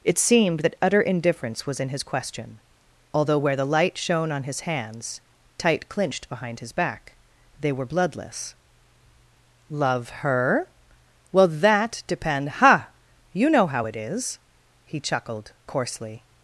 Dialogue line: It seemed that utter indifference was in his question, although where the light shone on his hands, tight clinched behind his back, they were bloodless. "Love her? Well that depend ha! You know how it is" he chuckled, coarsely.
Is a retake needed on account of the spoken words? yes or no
no